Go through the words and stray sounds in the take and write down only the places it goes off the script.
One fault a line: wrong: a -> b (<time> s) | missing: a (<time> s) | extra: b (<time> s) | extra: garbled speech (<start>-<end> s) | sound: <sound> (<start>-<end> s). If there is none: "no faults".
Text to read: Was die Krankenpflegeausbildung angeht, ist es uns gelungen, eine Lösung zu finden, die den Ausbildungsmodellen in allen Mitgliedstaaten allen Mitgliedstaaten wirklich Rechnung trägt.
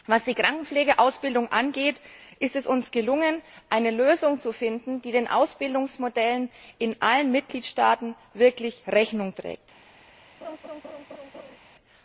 missing: allen Mitgliedstaaten (8.2 s)
sound: laugh (10.4-11.6 s)